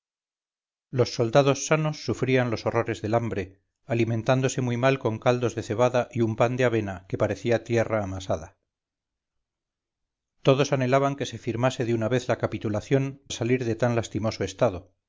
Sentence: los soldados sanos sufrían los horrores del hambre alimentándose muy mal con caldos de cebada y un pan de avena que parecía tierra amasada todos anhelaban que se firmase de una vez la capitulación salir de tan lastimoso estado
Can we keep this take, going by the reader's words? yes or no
yes